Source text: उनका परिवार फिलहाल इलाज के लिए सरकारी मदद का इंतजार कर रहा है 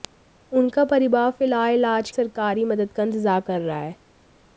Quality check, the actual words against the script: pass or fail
fail